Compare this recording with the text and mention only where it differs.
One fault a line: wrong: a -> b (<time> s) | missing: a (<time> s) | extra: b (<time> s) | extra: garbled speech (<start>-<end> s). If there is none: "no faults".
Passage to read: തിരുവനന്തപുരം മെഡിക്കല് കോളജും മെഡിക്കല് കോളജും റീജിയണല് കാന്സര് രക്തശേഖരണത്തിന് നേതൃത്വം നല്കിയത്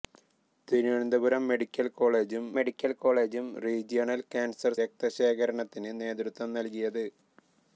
no faults